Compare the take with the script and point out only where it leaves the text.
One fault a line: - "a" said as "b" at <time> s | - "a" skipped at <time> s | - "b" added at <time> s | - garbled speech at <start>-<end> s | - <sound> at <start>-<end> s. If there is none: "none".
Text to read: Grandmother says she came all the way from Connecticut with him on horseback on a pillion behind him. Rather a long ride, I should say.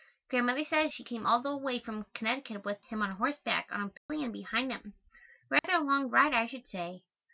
- dropout at 4.0-4.1 s
- dropout at 5.6-5.6 s